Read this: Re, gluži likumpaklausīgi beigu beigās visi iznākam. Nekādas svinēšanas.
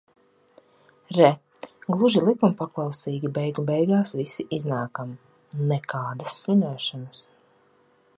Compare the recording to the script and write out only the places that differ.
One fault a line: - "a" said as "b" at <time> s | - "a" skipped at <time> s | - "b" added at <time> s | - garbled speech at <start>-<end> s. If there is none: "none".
none